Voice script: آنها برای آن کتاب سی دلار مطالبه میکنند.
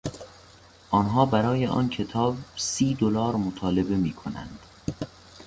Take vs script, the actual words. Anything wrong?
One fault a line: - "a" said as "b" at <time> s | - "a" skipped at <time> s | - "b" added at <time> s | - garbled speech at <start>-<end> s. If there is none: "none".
none